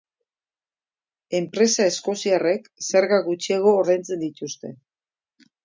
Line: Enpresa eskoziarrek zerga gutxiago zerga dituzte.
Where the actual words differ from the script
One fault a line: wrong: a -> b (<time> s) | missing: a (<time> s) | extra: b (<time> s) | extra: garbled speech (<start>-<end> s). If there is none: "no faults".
wrong: zerga -> ordaintzen (3.8 s)